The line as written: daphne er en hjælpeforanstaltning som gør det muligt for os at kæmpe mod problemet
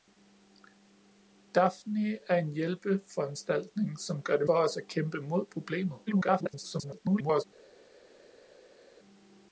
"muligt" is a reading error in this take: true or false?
true